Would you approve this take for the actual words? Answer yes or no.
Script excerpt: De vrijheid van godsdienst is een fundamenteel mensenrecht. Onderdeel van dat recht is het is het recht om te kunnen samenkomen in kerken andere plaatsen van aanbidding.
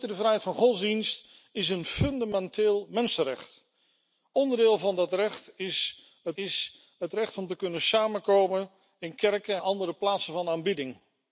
yes